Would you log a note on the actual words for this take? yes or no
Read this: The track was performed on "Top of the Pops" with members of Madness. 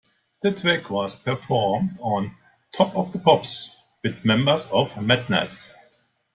no